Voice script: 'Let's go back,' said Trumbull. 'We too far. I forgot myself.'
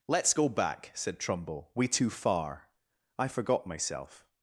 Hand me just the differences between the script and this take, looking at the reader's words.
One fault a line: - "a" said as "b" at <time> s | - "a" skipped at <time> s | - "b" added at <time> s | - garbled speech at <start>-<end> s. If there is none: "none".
none